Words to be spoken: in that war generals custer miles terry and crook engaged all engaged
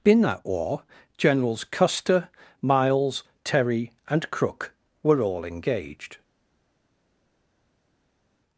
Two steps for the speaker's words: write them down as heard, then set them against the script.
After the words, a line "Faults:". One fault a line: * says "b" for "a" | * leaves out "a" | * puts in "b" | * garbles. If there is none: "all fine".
in that war generals custer miles terry and crook were all engaged
Faults:
* says "were" for "engaged"